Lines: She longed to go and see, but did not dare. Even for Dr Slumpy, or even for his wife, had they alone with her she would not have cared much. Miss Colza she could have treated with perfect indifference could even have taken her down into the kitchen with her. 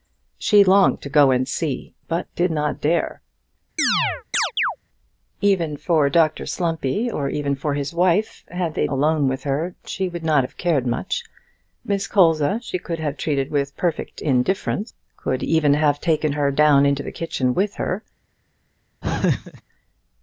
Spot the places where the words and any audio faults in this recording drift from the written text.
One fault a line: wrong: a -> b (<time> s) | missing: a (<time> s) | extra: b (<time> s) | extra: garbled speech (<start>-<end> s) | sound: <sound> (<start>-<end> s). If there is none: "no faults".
sound: chirp (3.8-4.8 s)
sound: laugh (19.0-19.6 s)